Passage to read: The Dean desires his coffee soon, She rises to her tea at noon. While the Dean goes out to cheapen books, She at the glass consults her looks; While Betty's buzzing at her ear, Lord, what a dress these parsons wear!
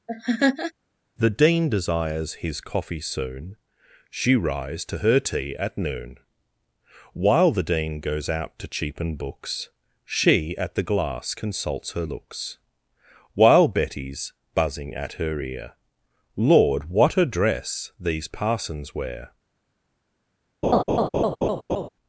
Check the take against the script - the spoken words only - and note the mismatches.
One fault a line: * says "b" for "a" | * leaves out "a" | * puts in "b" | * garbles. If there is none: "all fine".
* says "rise" for "rises"